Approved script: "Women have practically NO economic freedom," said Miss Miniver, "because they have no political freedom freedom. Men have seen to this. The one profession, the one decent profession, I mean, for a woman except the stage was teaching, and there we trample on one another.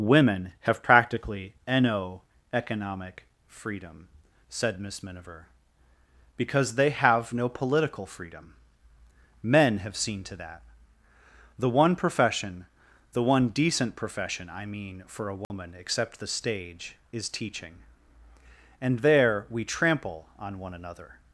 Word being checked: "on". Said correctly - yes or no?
yes